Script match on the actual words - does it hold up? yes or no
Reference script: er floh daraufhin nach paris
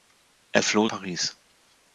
no